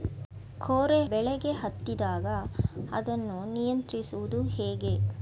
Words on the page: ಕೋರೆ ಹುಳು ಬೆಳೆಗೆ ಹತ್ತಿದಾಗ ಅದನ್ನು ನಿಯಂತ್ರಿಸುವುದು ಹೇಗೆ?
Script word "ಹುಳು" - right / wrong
wrong